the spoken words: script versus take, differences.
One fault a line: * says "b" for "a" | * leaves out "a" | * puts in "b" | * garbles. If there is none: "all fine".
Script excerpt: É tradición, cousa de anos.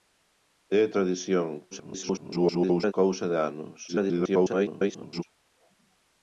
* garbles
* garbles